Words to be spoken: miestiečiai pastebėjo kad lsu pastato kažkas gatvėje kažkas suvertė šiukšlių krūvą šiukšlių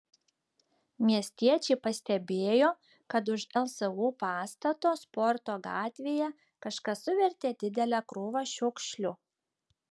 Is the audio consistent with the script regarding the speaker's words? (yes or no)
no